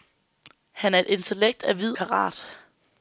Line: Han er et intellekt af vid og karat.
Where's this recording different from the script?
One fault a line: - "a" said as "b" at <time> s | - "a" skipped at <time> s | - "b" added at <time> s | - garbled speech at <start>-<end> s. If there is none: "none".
- "og" skipped at 1.9 s